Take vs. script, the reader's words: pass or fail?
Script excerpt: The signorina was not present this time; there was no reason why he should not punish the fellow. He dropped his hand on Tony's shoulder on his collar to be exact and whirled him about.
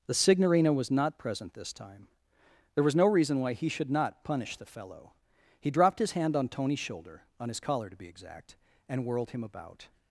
pass